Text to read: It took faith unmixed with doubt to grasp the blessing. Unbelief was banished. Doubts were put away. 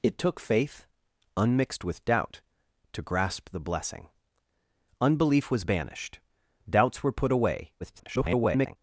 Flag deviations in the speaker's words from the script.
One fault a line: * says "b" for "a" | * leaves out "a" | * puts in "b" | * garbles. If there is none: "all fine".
* garbles